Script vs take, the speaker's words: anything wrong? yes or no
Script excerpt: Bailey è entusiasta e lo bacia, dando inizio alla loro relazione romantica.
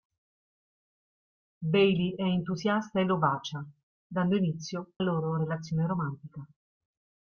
yes